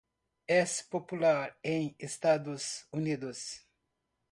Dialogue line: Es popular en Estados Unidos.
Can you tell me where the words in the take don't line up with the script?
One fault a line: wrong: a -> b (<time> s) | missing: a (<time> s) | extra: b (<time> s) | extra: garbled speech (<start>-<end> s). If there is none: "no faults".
no faults